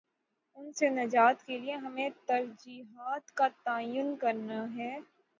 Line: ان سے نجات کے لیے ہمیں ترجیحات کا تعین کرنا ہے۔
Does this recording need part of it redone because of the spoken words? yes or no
no